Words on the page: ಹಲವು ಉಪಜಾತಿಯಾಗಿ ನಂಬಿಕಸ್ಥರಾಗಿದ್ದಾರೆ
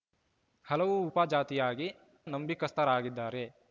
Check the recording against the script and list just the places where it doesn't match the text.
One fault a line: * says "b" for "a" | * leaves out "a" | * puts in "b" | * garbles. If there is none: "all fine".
all fine